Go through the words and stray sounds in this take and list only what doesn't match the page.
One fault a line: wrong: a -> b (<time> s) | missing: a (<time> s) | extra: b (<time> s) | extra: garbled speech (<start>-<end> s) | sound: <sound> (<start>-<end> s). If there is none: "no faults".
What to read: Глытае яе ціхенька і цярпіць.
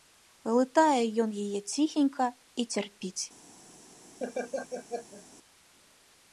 extra: ён (1.2 s)
sound: laugh (4.2-5.2 s)